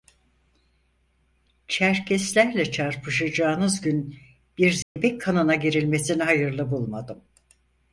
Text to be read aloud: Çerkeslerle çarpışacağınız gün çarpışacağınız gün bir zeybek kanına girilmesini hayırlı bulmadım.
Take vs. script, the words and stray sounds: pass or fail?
fail